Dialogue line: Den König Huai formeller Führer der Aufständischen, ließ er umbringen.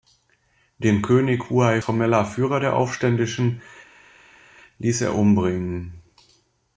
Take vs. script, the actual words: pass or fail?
pass